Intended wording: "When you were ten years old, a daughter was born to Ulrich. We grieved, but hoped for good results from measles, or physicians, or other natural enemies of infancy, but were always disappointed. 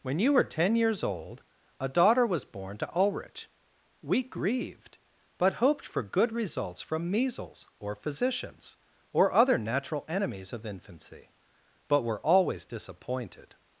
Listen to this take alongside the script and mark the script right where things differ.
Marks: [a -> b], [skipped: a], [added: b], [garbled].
"When you were ten years old, a daughter was born to Ulrich. We grieved, but hoped for good results from measles, or physicians, or other natural enemies of infancy, but were always disappointed.